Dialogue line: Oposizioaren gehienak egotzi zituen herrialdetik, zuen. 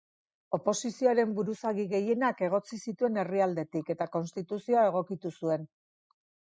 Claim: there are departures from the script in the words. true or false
true